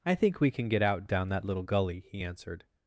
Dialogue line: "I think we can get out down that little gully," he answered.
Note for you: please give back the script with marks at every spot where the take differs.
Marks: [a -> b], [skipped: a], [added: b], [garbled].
"I think we can get out down that little gully," he answered.